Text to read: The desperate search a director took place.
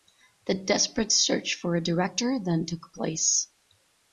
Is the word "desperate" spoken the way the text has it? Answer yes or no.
yes